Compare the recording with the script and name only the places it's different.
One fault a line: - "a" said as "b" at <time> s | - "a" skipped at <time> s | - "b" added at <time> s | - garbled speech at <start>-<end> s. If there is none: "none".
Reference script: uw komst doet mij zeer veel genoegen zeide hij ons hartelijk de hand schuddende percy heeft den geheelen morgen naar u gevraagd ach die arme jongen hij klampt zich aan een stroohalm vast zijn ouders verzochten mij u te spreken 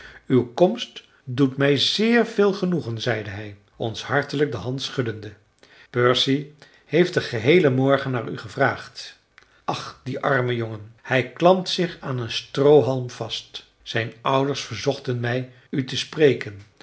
none